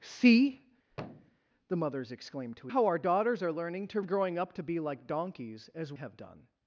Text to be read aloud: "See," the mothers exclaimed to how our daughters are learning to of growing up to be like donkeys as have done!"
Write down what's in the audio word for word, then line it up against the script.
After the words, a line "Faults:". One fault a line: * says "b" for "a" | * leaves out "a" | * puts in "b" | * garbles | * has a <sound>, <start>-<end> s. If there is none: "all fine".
"See," the mothers exclaimed to how our daughters are learning to of growing up to be like donkeys as have done!"
Faults:
* has a thud, 0.9-1.4 s